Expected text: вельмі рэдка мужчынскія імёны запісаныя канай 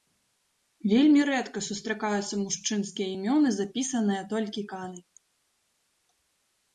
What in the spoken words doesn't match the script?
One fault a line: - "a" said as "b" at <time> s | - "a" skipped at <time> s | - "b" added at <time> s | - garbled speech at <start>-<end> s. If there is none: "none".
- "сустракаюцца" added at 1.6 s
- "толькі" added at 4.3 s